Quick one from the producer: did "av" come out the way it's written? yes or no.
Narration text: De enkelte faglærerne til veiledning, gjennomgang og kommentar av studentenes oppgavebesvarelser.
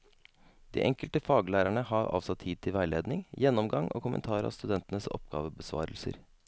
yes